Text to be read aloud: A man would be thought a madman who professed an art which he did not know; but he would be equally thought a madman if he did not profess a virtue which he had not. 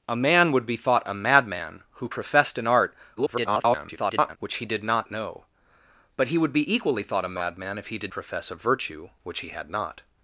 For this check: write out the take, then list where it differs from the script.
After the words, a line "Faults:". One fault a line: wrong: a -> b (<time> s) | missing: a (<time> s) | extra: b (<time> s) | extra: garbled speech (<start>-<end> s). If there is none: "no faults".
A man would be thought a madman who professed an art [garbled] which he did not know; but he would be equally thought a madman if he did profess a virtue which he had not.
Faults:
extra: garbled speech (3.2-4.4 s)
missing: not (8.1 s)